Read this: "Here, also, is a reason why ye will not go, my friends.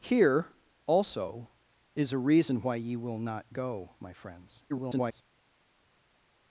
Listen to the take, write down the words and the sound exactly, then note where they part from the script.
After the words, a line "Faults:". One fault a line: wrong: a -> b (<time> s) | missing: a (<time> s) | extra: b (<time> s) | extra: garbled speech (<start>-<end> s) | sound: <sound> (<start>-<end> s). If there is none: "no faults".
"Here, also, is a reason why ye will not go, my friends. [garbled]
Faults:
extra: garbled speech (4.7-5.2 s)